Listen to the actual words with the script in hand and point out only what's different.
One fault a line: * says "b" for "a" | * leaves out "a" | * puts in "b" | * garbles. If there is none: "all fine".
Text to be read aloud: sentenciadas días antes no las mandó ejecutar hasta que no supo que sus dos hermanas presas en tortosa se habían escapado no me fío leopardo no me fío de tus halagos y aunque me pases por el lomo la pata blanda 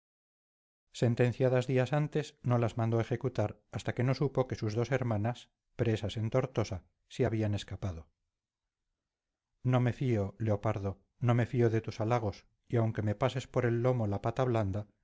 all fine